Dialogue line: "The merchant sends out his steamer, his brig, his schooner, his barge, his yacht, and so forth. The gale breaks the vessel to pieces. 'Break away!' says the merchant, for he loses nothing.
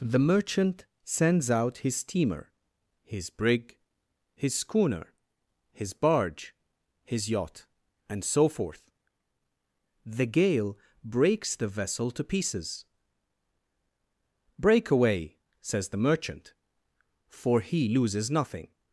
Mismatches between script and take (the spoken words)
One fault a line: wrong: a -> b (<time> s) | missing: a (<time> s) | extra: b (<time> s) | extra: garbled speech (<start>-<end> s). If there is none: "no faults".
no faults